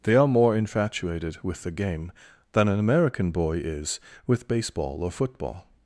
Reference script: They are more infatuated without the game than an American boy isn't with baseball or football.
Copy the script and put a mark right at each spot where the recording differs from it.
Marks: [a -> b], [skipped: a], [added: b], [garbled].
They are more infatuated [without -> with] the game than an American boy [isn't -> is] with baseball or football.